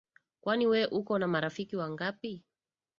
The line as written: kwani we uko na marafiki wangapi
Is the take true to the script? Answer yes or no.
yes